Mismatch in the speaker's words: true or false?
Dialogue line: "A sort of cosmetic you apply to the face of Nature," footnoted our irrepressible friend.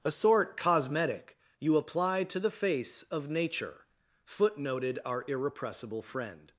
true